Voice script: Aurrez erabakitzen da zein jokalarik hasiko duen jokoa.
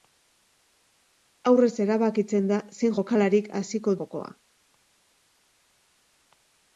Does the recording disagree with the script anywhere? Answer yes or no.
yes